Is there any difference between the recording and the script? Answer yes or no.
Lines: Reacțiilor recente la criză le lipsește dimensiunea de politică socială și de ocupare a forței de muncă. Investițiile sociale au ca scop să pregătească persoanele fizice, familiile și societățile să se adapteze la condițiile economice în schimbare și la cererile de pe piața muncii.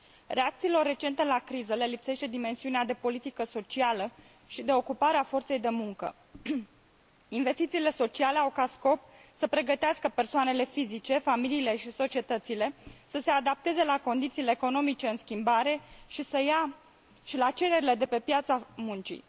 no